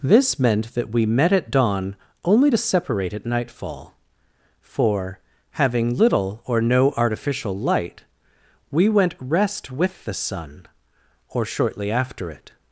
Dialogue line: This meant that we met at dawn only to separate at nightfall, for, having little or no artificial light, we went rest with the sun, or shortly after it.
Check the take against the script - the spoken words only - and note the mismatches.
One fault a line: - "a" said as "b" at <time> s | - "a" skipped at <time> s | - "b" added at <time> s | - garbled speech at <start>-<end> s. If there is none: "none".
none